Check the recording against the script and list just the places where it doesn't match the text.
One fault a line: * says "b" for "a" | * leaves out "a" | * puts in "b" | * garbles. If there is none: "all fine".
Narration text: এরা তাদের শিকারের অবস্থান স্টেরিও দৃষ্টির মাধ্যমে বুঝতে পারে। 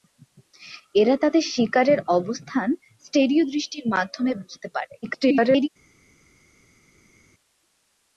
* garbles